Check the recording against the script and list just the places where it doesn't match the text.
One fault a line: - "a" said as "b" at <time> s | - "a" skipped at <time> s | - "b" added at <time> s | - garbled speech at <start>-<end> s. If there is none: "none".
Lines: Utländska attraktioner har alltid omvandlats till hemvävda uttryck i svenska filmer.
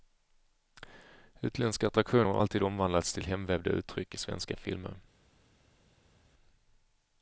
none